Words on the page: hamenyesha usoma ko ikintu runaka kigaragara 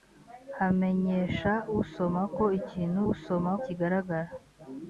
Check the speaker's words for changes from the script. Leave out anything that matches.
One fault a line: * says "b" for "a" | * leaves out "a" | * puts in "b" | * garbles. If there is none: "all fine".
* says "usoma" for "runaka"